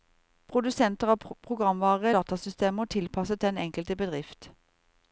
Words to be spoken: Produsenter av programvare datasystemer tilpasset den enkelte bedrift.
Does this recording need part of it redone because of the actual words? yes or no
no